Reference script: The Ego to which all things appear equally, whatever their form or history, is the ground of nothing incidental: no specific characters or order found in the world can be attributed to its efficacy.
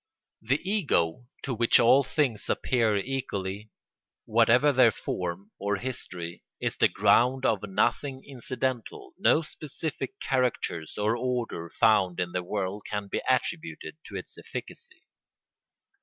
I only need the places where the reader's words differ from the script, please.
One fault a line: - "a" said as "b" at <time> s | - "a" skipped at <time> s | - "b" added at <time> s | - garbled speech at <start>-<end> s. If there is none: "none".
none